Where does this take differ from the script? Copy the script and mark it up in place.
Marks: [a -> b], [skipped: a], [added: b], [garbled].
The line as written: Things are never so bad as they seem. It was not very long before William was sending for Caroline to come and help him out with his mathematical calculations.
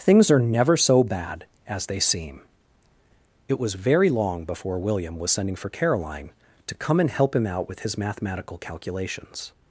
Things are never so bad as they seem. It was [skipped: not] very long before William was sending for Caroline to come and help him out with his mathematical calculations.